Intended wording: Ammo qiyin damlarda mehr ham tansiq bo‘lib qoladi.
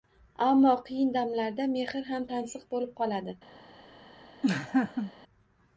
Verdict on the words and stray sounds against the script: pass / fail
fail